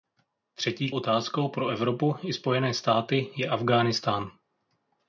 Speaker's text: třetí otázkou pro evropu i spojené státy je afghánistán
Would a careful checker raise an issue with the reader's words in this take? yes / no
no